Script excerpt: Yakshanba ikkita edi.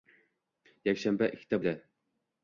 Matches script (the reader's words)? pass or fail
pass